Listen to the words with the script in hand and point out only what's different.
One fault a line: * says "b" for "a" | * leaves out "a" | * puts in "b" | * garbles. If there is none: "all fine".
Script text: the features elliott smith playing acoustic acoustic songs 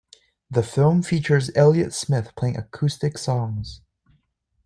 * puts in "film"
* leaves out "acoustic"